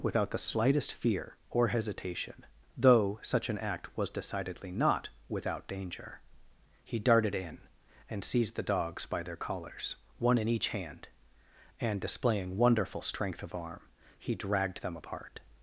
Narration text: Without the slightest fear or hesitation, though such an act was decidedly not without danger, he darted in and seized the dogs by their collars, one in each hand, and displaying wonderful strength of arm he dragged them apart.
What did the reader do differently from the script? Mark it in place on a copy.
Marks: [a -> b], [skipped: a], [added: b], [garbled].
Without the slightest fear or hesitation, though such an act was decidedly not without danger, he darted in and seized the dogs by their collars, one in each hand, and displaying wonderful strength of arm he dragged them apart.